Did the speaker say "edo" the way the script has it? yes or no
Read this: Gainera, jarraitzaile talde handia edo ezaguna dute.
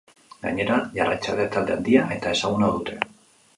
no